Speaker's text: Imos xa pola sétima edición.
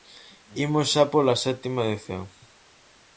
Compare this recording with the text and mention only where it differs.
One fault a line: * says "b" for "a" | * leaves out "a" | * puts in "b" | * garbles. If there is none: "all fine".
all fine